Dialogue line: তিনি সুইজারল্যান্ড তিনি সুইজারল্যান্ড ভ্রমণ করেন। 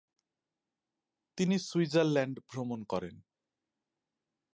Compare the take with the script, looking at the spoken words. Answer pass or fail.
fail